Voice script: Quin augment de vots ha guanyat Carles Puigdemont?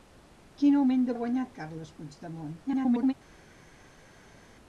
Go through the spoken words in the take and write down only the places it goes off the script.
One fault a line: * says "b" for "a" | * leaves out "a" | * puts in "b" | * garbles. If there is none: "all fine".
* leaves out "vots"
* garbles